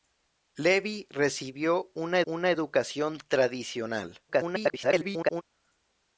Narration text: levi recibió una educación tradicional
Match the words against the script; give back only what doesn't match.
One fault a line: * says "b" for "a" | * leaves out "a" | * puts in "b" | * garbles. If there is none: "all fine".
* puts in "una"
* garbles